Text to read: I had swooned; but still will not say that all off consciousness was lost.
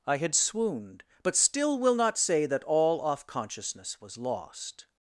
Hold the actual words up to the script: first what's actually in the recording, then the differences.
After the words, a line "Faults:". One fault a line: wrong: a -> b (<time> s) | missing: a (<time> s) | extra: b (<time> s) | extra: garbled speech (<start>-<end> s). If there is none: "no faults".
I had swooned; but still will not say that all off consciousness was lost.
Faults:
no faults